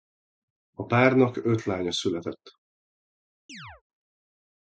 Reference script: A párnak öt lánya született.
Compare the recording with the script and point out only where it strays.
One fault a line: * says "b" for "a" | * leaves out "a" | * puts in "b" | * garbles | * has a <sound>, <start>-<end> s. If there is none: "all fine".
* has a chirp, 3.5-3.8 s